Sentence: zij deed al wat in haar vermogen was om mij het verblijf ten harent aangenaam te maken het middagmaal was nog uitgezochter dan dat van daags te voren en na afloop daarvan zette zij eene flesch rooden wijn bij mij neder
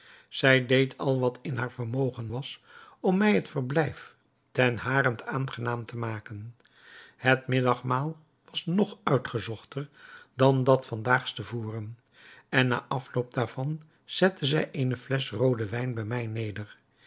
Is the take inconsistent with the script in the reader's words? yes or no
no